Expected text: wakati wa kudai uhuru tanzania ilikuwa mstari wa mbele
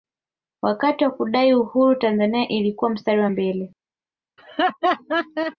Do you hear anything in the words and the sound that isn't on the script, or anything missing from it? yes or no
yes